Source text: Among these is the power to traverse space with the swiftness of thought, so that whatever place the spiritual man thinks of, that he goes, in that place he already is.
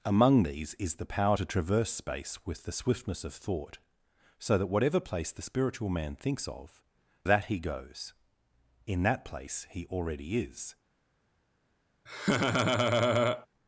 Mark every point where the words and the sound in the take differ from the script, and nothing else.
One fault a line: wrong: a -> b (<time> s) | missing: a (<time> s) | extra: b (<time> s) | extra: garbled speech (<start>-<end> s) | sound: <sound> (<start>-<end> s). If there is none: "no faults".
sound: laugh (12.1-13.5 s)